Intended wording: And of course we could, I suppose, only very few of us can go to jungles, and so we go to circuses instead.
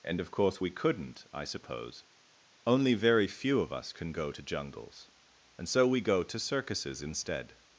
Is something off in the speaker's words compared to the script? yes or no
yes